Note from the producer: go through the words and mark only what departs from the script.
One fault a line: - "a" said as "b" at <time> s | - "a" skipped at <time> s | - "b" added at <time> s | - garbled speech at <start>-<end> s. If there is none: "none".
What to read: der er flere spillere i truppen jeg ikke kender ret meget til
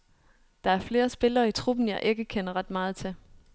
none